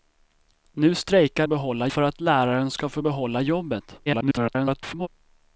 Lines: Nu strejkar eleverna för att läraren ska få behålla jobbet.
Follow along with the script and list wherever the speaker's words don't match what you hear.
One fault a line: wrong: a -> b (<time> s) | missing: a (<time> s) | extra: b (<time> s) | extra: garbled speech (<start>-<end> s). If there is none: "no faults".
wrong: eleverna -> behålla (1.5 s)
extra: garbled speech (4.1-5.1 s)